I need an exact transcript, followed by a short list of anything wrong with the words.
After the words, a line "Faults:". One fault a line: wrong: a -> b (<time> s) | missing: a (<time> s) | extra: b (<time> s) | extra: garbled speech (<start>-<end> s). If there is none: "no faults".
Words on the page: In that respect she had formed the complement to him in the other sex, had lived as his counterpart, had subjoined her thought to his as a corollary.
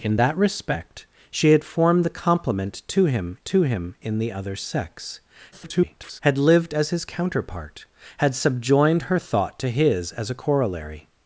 In that respect she had formed the complement to him to him in the other sex, [garbled] had lived as his counterpart, had subjoined her thought to his as a corollary.
Faults:
extra: to him (3.4 s)
extra: garbled speech (5.5-6.2 s)